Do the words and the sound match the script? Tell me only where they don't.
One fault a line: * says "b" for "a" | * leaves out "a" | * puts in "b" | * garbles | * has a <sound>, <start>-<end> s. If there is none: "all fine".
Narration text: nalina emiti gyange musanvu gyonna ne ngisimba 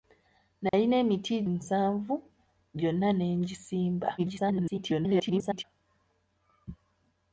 * has a dropout, 0.7-0.7 s
* leaves out "gyange"
* garbles